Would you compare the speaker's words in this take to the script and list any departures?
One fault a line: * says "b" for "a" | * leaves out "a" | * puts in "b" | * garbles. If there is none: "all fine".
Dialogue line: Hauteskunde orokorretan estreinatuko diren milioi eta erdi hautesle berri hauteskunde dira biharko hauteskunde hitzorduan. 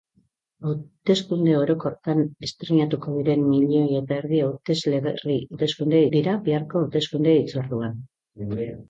all fine